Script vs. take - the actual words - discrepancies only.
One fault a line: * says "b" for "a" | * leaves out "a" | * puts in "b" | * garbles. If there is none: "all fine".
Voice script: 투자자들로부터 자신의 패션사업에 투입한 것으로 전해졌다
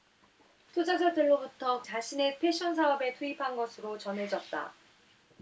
all fine